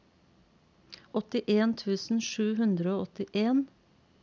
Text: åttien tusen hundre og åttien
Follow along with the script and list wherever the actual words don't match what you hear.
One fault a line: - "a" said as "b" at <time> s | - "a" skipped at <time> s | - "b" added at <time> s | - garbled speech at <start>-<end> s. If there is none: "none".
- "sju" added at 2.3 s